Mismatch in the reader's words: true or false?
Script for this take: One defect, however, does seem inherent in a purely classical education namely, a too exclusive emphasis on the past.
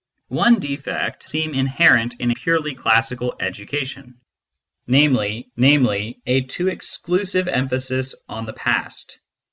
true